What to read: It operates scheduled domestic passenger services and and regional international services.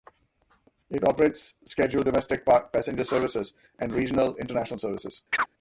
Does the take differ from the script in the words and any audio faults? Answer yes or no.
yes